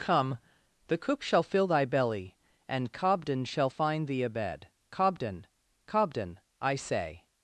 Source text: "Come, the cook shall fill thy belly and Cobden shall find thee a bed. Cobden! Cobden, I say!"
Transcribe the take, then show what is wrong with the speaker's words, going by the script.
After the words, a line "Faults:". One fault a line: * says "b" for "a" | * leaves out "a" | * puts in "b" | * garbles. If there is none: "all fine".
"Come, the cook shall fill thy belly and Cobden shall find thee a bed. Cobden! Cobden, I say!"
Faults:
all fine